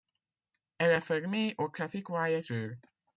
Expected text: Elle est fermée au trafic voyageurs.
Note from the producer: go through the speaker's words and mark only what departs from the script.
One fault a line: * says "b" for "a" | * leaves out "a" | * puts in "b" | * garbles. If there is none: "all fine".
all fine